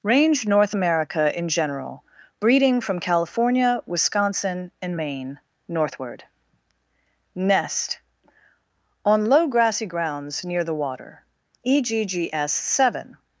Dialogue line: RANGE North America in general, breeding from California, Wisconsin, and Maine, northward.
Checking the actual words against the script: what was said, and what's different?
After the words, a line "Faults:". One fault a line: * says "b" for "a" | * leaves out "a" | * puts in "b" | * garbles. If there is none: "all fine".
RANGE North America in general, breeding from California, Wisconsin, and Maine, northward. NEST On low grassy grounds near the water. EGGS Seven
Faults:
* puts in "NEST On low grassy grounds near the water EGGS Seven"